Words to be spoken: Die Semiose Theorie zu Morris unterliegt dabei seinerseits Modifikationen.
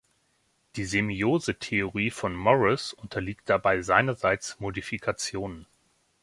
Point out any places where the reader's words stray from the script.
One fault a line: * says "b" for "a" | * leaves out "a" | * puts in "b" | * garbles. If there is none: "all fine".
* says "von" for "zu"